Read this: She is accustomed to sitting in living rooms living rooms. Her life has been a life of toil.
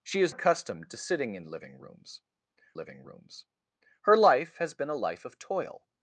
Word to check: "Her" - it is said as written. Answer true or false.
true